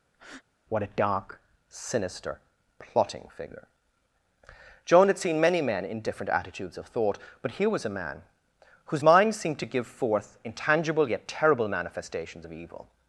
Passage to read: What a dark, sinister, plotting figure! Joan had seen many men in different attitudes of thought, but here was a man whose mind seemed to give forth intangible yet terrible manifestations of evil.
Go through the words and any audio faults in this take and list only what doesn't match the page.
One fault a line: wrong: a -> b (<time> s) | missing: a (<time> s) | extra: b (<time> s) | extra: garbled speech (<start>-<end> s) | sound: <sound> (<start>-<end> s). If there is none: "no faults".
sound: breath (0.1-0.4 s)